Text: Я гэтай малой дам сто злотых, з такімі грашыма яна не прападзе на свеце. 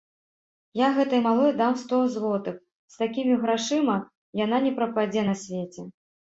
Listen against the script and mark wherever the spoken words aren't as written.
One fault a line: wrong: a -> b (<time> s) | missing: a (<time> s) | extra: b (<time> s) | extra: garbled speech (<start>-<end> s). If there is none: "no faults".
no faults